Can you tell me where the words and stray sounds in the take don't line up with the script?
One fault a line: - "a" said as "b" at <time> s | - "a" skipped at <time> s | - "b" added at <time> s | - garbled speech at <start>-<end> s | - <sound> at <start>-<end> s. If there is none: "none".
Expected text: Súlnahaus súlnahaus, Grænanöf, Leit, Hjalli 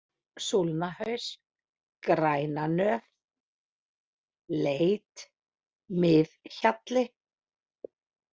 - "súlnahaus" skipped at 1.2 s
- "Mið" added at 6.1 s